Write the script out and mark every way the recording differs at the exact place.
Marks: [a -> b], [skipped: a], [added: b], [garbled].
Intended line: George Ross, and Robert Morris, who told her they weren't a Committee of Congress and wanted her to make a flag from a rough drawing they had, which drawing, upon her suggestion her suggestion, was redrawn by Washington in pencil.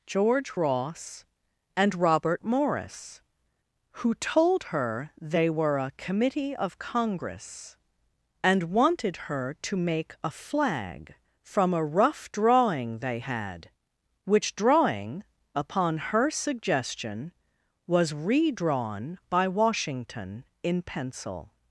George Ross, and Robert Morris, who told her they [weren't -> were] a Committee of Congress and wanted her to make a flag from a rough drawing they had, which drawing, upon her suggestion [skipped: her suggestion,] was redrawn by Washington in pencil.